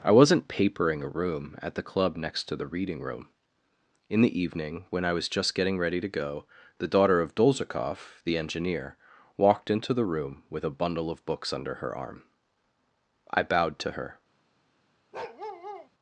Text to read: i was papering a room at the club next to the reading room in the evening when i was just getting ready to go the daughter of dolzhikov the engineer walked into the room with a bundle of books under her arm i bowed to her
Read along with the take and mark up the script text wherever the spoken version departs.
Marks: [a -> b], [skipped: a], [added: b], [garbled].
i [was -> wasn't] papering a room at the club next to the reading room in the evening when i was just getting ready to go the daughter of dolzhikov the engineer walked into the room with a bundle of books under her arm i bowed to her